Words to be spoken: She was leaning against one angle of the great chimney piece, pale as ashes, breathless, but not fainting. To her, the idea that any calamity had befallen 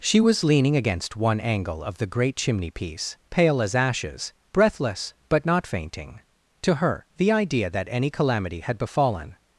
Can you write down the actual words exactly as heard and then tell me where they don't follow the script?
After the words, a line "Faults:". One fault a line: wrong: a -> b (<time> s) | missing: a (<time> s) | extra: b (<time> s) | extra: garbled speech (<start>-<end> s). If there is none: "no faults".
She was leaning against one angle of the great chimney piece, pale as ashes, breathless, but not fainting. To her, the idea that any calamity had befallen
Faults:
no faults